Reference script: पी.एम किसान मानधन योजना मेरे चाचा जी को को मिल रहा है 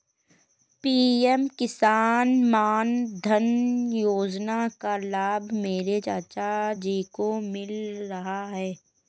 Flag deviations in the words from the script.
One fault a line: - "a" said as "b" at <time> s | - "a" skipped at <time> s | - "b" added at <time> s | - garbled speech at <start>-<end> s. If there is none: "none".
- "का लाभ" added at 4.8 s
- "को" skipped at 7.3 s